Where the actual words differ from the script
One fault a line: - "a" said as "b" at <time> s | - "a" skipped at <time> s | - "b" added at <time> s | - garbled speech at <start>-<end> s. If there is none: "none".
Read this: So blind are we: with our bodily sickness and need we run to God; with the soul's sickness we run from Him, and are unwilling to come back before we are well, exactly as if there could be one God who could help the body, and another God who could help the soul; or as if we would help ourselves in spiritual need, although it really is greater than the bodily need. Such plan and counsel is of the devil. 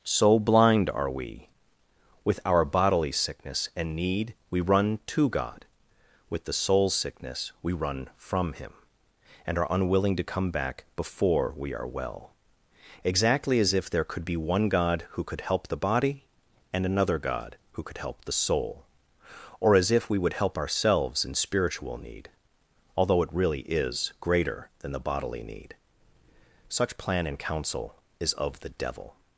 none